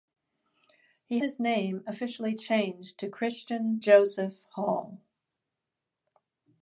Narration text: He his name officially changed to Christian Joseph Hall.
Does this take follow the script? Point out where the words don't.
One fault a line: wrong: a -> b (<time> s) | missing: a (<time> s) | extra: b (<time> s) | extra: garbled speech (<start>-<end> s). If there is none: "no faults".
no faults